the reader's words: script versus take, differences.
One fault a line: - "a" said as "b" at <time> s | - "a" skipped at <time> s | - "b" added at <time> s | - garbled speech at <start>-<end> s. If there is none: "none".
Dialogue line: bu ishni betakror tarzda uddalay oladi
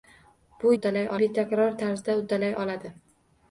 - "ishni" said as "uddalay" at 0.8 s